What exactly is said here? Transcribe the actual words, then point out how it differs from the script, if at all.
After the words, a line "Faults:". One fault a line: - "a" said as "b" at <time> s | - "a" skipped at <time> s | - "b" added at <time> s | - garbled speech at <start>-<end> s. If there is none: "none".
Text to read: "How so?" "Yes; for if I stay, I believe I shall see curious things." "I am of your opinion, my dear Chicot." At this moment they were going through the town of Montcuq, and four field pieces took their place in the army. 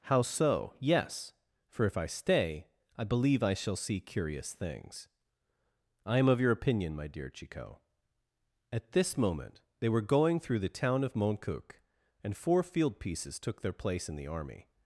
"How so?" "Yes; for if I stay, I believe I shall see curious things." "I am of your opinion, my dear Chicot." At this moment they were going through the town of Montcuq, and four field pieces took their place in the army.
Faults:
none